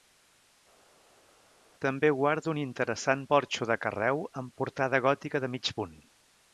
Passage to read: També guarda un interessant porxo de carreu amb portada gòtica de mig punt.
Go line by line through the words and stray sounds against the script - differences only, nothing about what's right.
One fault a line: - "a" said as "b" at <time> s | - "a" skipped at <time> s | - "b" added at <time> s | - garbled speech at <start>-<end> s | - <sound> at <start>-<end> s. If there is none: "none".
none